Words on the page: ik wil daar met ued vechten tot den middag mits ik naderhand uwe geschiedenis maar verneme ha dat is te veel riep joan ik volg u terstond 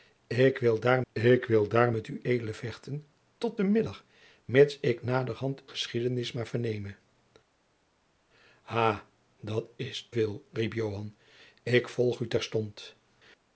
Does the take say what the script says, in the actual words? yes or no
no